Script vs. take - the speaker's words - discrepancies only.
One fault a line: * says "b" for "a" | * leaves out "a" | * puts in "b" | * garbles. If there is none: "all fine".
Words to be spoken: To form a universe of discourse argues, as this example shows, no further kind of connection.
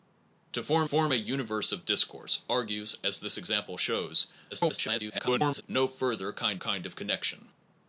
* puts in "form"
* garbles
* puts in "kind"